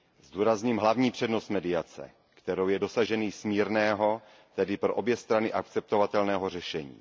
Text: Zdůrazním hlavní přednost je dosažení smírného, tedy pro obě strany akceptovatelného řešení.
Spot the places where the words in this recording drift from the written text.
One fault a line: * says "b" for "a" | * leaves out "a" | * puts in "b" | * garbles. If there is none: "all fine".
* puts in "mediace kterou"